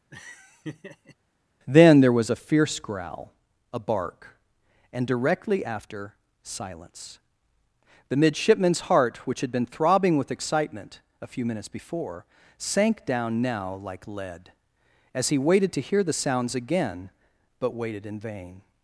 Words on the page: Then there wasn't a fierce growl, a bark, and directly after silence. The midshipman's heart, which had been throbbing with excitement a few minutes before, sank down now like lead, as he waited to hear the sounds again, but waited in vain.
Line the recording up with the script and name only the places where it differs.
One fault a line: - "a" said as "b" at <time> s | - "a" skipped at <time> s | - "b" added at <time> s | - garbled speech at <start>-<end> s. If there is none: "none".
- "wasn't" said as "was" at 2.1 s